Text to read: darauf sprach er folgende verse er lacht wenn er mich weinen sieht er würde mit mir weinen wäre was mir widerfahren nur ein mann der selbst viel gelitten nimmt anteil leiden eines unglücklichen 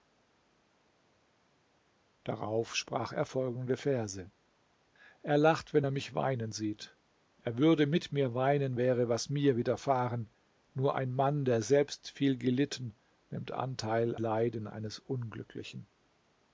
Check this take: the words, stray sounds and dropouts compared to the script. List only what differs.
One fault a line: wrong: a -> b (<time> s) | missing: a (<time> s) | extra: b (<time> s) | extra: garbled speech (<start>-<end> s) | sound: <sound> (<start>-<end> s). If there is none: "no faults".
no faults